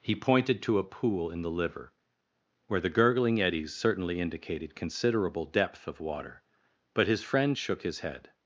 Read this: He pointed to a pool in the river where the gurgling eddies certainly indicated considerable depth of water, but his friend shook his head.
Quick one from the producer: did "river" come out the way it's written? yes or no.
no